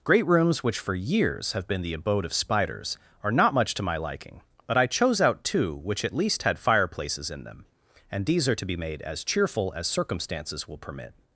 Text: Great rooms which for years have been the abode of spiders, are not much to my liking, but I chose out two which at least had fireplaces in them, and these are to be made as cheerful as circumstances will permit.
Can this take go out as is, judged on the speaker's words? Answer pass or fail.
pass